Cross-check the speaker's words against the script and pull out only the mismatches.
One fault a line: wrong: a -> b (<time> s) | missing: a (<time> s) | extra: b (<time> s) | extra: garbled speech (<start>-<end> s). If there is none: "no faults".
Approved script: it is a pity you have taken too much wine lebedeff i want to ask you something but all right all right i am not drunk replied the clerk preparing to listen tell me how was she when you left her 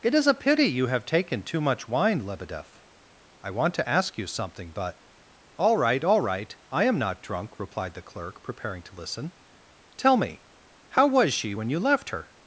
no faults